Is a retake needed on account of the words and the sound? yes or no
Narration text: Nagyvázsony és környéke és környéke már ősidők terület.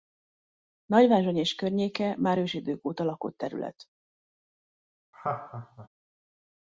yes